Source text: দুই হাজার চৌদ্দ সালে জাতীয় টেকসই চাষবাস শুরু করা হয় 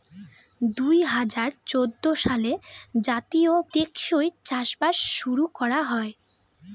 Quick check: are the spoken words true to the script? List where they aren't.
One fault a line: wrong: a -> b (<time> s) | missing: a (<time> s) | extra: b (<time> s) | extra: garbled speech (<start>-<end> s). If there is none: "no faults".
no faults